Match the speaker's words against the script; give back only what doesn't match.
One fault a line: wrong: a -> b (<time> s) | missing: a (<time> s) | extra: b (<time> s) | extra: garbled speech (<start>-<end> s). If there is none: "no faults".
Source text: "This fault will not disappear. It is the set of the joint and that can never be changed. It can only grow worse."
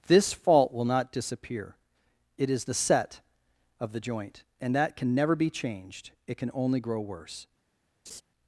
no faults